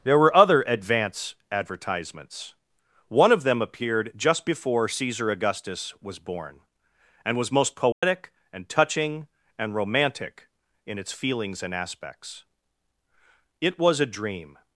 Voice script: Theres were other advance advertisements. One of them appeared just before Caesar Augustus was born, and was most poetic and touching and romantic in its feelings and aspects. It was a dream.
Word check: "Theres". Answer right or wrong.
wrong